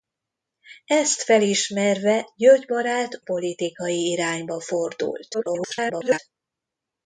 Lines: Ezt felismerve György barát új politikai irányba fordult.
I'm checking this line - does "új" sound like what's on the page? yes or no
no